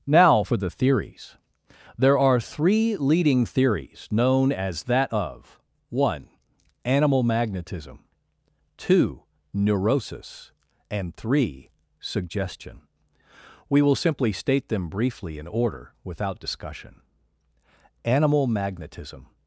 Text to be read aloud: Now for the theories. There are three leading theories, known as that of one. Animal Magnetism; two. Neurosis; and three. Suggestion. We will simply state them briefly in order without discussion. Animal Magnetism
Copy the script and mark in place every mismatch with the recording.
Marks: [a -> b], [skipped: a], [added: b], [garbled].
Now for the theories. There are three leading theories, known as that of one. Animal Magnetism; two. Neurosis; and three. Suggestion. We will simply state them briefly in order without discussion. Animal Magnetism